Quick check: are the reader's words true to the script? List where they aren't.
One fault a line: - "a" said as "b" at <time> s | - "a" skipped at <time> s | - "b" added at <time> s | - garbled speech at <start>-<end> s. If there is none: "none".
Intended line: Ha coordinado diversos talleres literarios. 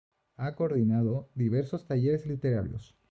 none